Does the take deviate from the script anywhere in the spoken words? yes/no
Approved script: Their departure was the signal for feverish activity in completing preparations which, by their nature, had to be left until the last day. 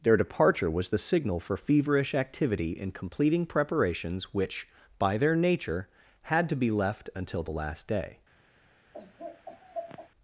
no